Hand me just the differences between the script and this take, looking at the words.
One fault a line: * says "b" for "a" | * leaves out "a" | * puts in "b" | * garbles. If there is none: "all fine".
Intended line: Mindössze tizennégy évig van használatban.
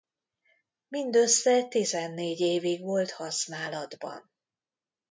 * says "volt" for "van"